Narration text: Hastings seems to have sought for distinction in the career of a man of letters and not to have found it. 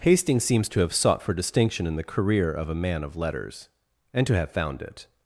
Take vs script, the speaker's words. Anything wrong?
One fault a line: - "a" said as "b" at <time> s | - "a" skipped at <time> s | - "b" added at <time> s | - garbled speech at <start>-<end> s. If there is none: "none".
- "not" skipped at 4.2 s